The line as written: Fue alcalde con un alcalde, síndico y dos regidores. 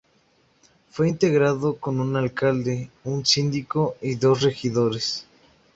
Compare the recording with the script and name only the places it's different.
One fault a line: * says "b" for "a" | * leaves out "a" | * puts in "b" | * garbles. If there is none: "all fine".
* says "integrado" for "alcalde"
* puts in "un"